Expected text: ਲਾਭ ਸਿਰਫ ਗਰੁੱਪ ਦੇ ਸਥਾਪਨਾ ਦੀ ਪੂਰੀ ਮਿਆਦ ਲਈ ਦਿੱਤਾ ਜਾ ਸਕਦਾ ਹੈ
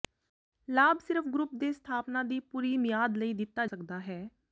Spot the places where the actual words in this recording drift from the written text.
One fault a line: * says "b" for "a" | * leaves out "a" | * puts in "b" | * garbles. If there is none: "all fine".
* leaves out "ਜਾ"